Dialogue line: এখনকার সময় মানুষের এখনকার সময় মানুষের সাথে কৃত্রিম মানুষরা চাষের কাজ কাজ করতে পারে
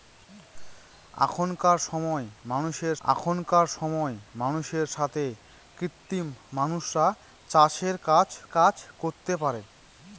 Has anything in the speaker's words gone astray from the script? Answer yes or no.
no